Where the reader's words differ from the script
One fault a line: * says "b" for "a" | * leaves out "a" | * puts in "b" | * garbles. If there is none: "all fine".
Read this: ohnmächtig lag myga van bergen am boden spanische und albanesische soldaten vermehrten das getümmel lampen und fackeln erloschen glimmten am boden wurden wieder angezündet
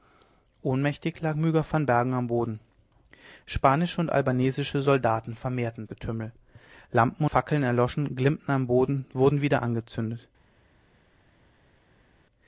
* leaves out "das"
* leaves out "und"